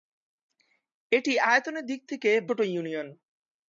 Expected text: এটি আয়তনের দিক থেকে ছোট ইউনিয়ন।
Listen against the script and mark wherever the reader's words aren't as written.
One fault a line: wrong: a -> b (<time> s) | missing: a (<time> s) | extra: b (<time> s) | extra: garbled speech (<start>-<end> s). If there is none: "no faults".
no faults